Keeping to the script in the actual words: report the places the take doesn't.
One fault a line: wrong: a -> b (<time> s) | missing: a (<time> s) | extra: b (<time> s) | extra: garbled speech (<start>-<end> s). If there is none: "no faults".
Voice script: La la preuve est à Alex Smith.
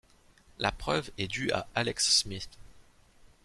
missing: la (0.7 s)
extra: due (1.2 s)